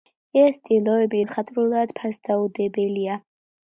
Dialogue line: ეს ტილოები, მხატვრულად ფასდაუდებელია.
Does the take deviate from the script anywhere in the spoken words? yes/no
no